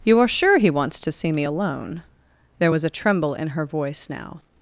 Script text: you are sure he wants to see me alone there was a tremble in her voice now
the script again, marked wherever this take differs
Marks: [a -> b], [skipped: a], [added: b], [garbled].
you are sure he wants to see me alone there was a tremble in her voice now